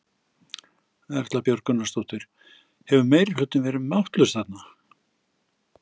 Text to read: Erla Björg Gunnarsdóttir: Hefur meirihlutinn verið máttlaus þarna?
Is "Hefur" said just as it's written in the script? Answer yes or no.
yes